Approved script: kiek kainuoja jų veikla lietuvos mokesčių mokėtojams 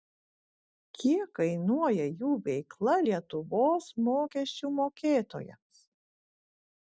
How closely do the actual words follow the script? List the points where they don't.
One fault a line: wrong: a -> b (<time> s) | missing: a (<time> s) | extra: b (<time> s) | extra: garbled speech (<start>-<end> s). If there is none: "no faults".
no faults